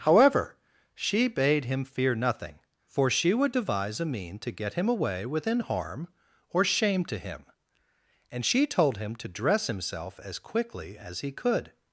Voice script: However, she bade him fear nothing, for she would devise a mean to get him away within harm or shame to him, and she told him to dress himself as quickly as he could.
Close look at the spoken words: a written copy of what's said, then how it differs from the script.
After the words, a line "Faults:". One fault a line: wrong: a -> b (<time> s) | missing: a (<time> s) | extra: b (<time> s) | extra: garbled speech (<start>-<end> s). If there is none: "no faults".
However, she bade him fear nothing, for she would devise a mean to get him away within harm or shame to him, and she told him to dress himself as quickly as he could.
Faults:
no faults